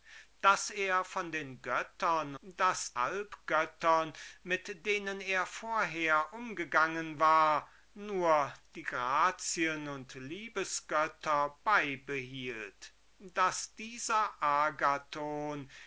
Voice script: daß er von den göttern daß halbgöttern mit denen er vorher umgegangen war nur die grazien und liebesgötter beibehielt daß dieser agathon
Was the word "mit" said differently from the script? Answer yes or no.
no